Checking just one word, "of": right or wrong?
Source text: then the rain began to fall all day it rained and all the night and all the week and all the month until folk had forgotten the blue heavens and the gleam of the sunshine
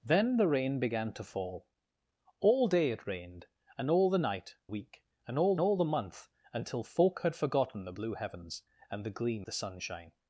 wrong